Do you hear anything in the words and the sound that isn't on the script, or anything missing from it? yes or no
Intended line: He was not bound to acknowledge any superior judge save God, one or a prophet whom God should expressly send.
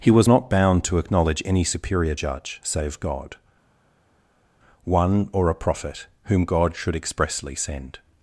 no